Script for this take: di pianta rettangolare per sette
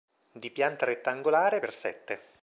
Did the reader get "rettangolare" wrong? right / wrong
right